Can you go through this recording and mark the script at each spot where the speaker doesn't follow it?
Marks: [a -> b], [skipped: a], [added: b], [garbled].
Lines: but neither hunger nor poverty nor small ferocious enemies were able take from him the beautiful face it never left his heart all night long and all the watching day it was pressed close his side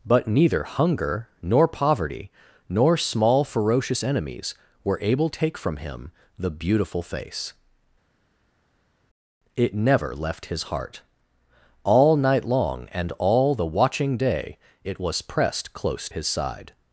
but neither hunger nor poverty nor small ferocious enemies were able take from him the beautiful face it never left his heart all night long and all the watching day it was pressed close his side